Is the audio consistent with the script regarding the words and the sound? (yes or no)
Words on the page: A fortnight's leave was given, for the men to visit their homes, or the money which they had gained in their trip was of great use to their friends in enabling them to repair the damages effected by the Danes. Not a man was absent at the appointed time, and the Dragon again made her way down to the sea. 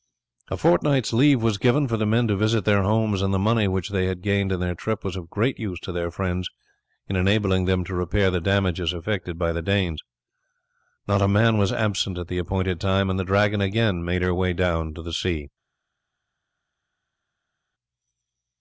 no